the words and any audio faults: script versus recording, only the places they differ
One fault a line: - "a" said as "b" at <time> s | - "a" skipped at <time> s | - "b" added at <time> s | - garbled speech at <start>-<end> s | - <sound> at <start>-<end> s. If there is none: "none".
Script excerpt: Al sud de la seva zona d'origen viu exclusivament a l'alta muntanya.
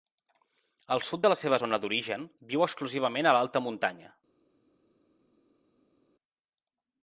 none